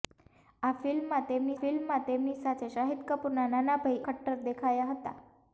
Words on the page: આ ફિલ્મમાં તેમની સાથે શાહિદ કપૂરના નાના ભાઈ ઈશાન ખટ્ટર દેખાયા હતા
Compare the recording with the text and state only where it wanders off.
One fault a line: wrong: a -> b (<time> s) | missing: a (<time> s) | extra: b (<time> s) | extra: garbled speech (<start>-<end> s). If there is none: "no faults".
extra: ફિલ્મમાં તેમની (1.6 s)
missing: ઈશાન (4.1 s)